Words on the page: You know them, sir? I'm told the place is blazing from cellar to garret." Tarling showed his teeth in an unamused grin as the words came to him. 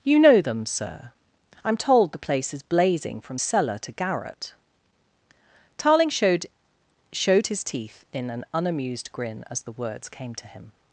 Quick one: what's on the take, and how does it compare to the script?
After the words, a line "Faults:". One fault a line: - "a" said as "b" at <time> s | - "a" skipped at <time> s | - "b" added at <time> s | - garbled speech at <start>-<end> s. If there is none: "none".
You know them, sir? I'm told the place is blazing from cellar to garret." Tarling showed showed his teeth in an unamused grin as the words came to him.
Faults:
- "showed" added at 7.1 s